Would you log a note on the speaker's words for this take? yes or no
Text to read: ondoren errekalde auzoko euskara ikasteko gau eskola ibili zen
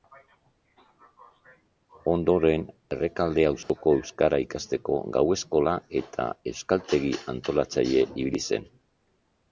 yes